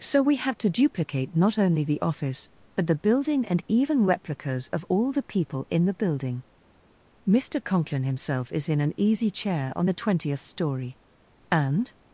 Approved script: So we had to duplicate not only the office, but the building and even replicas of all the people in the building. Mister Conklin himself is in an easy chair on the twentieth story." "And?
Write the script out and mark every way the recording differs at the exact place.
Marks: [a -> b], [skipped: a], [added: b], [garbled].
So we had to duplicate not only the office, but the building and even replicas of all the people in the building. Mister Conklin himself is in an easy chair on the twentieth story." "And?